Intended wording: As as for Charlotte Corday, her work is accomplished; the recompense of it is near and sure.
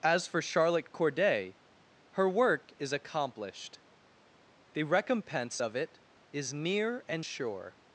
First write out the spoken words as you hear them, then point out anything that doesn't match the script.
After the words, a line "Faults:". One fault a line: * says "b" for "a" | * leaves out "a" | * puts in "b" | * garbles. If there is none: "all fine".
As for Charlotte Corday, her work is accomplished; the recompense of it is near and sure.
Faults:
* leaves out "as"